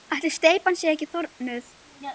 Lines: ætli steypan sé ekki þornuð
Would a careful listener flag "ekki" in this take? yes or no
no